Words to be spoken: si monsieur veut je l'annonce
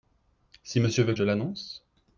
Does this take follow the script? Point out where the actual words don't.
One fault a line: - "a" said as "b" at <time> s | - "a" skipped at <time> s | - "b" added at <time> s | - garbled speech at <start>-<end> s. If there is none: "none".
none